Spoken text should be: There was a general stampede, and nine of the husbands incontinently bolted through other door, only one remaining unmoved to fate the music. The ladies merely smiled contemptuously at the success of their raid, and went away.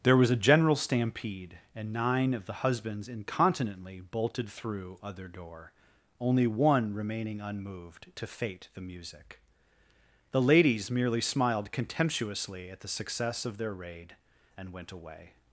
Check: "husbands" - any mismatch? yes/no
no